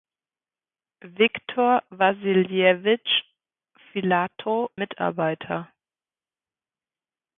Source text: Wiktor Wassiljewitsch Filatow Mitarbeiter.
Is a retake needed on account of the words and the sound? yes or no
no